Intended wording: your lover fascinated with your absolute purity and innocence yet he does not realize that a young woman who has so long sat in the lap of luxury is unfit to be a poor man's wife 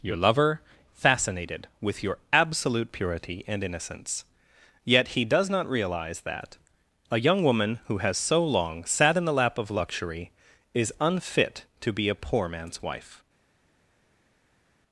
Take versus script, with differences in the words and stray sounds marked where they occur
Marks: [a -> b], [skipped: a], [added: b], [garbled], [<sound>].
your lover fascinated with your absolute purity and innocence yet he does not realize that a young woman who has so long sat in the lap of luxury is unfit to be a poor man's wife